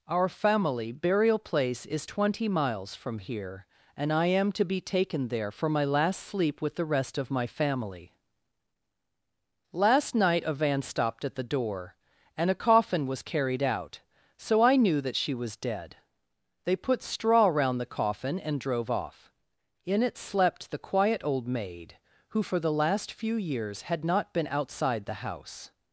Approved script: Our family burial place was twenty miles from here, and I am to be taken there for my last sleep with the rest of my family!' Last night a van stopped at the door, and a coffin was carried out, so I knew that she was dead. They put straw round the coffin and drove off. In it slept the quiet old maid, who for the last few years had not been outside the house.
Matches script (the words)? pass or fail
fail